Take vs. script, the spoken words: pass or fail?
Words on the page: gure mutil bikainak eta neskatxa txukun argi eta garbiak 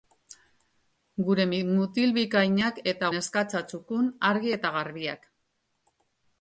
pass